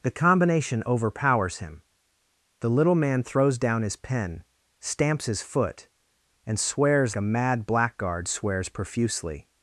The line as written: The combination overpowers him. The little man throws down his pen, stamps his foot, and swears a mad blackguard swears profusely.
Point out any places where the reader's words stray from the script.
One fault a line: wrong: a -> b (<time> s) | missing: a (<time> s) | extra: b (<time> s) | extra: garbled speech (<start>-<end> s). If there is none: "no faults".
no faults